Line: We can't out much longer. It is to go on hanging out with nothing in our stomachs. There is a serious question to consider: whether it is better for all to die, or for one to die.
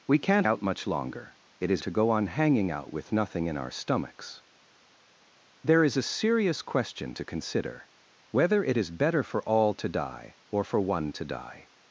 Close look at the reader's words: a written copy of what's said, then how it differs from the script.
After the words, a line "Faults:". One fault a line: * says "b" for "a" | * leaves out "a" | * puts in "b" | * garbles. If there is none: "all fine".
We can't out much longer. It is to go on hanging out with nothing in our stomachs. There is a serious question to consider: whether it is better for all to die, or for one to die.
Faults:
all fine